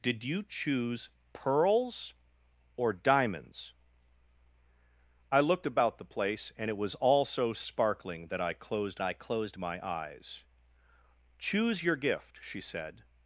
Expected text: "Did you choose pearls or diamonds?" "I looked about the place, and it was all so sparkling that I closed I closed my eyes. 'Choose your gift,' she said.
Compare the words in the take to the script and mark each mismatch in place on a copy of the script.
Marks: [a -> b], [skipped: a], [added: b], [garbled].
"Did you choose pearls or diamonds?" "I looked about the place, and it was all so sparkling that I closed I closed my eyes. 'Choose your gift,' she said.